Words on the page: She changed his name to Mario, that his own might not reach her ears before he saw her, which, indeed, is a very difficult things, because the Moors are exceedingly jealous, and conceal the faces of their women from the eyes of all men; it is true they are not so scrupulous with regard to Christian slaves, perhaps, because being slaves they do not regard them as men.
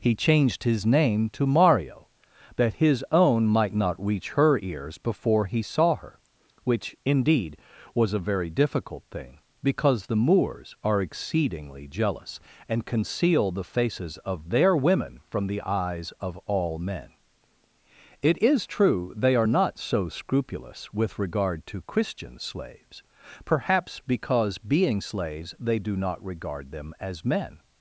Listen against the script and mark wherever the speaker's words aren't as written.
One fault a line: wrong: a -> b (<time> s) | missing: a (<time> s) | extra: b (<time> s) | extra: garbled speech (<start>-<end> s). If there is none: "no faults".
wrong: She -> He (0.0 s)
wrong: is -> was (7.9 s)
wrong: things -> thing (9.1 s)